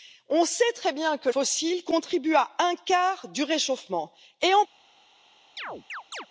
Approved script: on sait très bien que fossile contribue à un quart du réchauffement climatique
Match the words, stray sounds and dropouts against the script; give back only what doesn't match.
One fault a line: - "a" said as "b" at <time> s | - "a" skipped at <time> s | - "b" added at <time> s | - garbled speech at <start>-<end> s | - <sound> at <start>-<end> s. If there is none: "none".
- chirp at 5.6-6.3 s